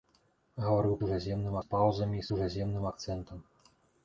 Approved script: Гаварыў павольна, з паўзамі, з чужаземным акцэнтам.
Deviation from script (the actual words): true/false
true